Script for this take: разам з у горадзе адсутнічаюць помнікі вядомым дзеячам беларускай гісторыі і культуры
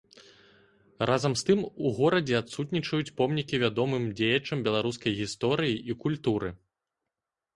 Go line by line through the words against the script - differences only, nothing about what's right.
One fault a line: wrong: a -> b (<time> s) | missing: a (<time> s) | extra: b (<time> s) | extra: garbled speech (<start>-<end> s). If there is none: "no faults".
extra: тым (1.5 s)